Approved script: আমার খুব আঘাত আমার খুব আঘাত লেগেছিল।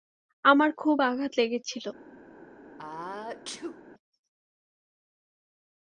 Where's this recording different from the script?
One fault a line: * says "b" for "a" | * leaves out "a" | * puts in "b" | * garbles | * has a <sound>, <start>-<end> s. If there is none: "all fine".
* leaves out "আমার খুব আঘাত"
* has a sneeze, 2.8-3.8 s